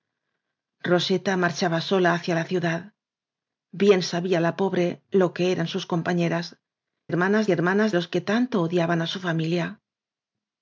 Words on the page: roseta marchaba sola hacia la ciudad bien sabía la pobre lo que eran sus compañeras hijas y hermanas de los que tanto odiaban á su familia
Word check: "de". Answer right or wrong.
wrong